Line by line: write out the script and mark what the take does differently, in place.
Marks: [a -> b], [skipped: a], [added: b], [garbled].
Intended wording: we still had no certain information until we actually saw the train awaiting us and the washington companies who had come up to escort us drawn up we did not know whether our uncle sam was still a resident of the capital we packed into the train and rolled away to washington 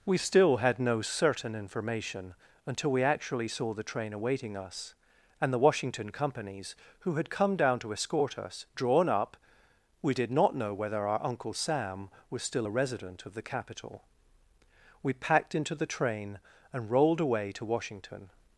we still had no certain information until we actually saw the train awaiting us and the washington companies who had come [up -> down] to escort us drawn up we did not know whether our uncle sam was still a resident of the capital we packed into the train and rolled away to washington